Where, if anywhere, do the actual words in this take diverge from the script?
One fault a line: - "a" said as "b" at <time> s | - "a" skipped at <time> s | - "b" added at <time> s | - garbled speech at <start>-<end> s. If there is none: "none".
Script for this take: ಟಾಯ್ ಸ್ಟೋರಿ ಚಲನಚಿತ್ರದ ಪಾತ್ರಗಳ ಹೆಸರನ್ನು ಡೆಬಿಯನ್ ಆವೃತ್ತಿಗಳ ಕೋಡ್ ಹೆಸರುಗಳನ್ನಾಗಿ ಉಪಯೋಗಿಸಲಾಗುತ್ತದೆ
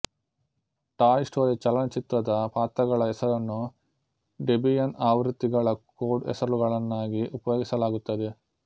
none